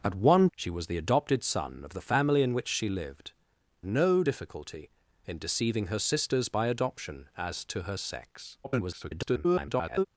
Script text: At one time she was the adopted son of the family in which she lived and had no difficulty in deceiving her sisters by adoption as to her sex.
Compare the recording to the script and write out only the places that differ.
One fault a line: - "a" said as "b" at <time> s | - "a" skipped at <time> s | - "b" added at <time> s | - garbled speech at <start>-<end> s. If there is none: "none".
- "time" skipped at 0.5 s
- "and had" skipped at 3.3 s
- garbled speech at 8.6-10.1 s